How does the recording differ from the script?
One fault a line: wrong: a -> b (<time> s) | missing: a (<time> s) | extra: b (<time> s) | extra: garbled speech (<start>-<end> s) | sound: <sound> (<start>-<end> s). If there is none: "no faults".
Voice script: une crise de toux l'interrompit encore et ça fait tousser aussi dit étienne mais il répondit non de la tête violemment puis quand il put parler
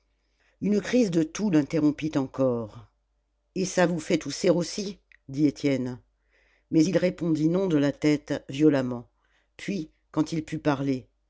extra: vous (3.9 s)